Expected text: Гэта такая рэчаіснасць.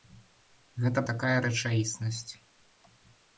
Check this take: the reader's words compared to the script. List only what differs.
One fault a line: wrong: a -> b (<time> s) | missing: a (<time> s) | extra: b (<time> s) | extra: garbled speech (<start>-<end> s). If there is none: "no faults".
no faults